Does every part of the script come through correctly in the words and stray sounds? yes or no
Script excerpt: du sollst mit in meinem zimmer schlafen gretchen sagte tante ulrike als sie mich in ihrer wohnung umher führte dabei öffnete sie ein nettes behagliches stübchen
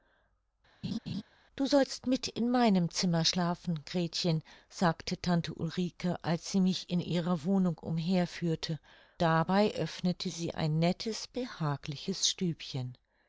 no